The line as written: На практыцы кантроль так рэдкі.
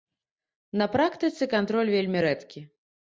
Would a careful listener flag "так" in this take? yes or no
yes